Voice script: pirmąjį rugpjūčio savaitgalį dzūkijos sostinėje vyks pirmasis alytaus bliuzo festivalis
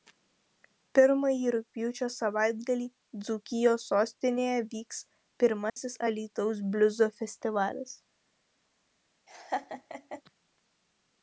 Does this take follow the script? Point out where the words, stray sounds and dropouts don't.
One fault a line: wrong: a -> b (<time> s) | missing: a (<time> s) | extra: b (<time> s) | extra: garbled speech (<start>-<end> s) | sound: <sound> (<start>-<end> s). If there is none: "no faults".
sound: dropout (5.7-5.8 s)
sound: laugh (9.3-10.2 s)